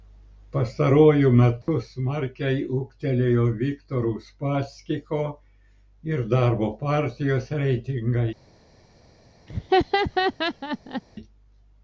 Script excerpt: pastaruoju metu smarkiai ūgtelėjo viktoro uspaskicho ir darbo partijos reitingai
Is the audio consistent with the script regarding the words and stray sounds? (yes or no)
no